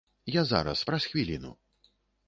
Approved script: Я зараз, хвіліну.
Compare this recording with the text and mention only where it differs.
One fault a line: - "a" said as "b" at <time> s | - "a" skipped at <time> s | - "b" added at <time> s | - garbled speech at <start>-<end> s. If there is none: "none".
- "праз" added at 0.8 s